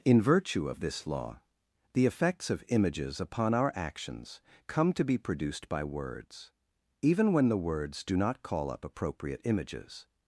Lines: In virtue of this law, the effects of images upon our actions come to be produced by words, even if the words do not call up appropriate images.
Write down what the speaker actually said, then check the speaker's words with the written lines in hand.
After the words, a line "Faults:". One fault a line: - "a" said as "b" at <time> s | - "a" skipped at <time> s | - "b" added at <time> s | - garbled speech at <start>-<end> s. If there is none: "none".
In virtue of this law, the effects of images upon our actions come to be produced by words, even when the words do not call up appropriate images.
Faults:
- "if" said as "when" at 7.3 s